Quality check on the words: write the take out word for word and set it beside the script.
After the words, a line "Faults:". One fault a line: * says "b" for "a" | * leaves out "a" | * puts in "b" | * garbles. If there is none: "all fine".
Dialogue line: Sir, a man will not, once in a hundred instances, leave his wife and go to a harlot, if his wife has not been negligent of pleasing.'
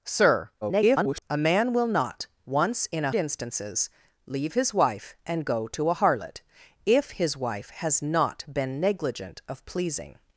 Sir, [garbled] a man will not, once in a instances, leave his wife and go to a harlot, if his wife has not been negligent of pleasing.'
Faults:
* garbles
* leaves out "hundred"